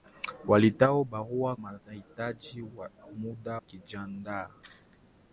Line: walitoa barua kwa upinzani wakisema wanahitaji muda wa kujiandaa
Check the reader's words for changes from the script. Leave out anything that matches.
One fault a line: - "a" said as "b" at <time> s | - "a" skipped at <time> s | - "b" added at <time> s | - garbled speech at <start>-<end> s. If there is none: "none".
- "kwa upinzani wakisema" skipped at 1.6 s
- "wa" skipped at 3.6 s